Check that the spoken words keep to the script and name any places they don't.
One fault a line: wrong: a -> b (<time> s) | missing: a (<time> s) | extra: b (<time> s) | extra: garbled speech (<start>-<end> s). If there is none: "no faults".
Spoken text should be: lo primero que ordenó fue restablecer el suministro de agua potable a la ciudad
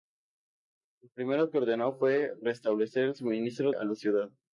missing: de agua potable (3.7 s)